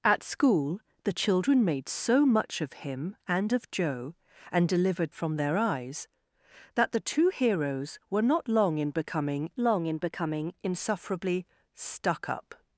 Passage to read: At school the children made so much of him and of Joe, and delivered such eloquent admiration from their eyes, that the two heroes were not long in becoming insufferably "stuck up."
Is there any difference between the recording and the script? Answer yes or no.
yes